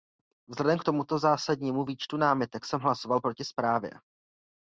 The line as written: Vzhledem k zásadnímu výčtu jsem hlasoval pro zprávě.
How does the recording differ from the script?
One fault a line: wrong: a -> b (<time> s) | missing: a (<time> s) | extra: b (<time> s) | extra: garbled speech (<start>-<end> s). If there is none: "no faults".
extra: tomuto (0.8 s)
extra: námitek (2.2 s)
wrong: pro -> proti (3.2 s)